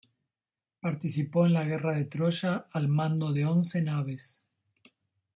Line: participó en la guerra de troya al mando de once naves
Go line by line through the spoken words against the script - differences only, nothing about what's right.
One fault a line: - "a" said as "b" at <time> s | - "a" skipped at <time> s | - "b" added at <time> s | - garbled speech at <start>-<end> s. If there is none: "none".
none